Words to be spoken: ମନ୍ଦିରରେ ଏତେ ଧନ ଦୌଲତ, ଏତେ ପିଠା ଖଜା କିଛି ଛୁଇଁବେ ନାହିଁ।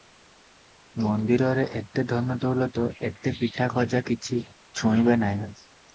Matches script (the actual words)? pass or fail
pass